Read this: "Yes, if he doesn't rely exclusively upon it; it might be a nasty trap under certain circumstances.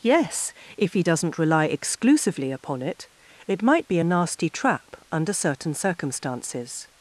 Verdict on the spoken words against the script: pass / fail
pass